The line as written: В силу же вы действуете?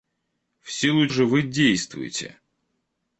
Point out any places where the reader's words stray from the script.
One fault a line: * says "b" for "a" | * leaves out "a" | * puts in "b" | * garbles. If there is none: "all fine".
all fine